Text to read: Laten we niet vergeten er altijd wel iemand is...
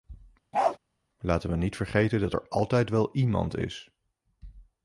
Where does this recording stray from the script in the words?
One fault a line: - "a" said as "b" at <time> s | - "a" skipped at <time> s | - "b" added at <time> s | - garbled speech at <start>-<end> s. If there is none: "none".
- "dat" added at 2.2 s